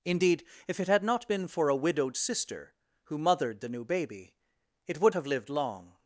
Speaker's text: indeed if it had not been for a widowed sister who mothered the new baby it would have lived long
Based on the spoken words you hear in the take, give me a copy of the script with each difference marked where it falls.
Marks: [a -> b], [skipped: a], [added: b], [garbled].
indeed if it had not been for a widowed sister who mothered the new baby it would have lived long